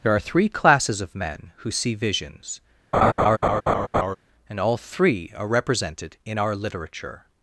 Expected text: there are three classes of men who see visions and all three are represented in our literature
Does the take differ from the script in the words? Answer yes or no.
no